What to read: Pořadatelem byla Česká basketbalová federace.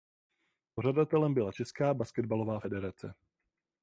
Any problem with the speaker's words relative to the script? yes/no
no